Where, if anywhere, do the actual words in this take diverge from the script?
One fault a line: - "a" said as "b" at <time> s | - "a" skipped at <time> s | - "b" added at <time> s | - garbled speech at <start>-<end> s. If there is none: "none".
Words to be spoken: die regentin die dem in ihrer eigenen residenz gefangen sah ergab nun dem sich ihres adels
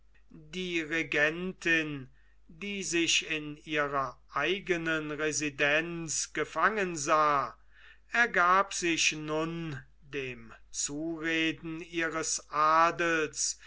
- "dem" said as "sich" at 2.8 s
- "sich" added at 8.7 s
- "sich" said as "zureden" at 10.7 s